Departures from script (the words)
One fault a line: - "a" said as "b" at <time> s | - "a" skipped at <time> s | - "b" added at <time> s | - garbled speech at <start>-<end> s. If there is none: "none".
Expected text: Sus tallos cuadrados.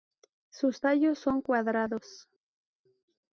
- "son" added at 1.2 s